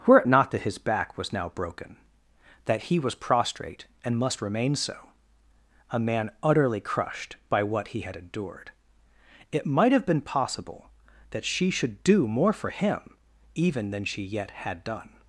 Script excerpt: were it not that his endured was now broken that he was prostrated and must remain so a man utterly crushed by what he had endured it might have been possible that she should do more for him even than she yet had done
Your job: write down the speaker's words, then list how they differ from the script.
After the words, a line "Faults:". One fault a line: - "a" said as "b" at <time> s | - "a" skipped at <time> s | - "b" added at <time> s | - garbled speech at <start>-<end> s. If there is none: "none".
were it not that his back was now broken that he was prostrate and must remain so a man utterly crushed by what he had endured it might have been possible that she should do more for him even than she yet had done
Faults:
- "endured" said as "back" at 0.8 s
- "prostrated" said as "prostrate" at 3.2 s